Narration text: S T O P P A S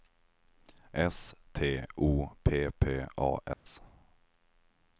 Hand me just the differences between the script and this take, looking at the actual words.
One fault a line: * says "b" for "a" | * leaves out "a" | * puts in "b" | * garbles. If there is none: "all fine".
all fine